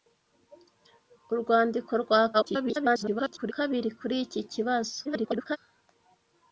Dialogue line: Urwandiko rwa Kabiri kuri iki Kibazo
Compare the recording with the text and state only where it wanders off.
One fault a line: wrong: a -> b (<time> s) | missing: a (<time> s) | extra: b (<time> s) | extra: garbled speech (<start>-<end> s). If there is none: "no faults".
extra: garbled speech (2.3-3.5 s)
extra: garbled speech (5.0-5.6 s)